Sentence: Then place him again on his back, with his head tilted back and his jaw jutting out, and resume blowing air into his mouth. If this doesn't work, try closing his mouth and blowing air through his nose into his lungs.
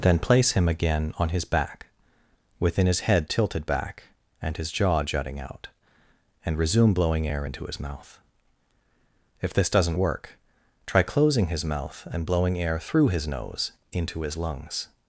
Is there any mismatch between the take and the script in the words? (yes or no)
yes